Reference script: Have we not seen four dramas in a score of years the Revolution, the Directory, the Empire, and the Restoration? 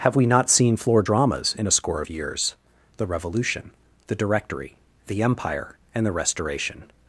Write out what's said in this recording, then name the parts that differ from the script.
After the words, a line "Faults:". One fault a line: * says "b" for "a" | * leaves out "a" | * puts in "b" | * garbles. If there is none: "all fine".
Have we not seen floor dramas in a score of years the Revolution, the Directory, the Empire, and the Restoration?
Faults:
* says "floor" for "four"